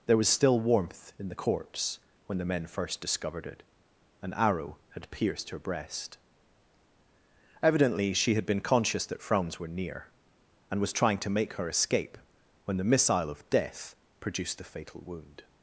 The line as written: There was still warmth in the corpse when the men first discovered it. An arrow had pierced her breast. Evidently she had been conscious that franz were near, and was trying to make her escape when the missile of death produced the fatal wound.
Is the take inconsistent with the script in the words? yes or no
no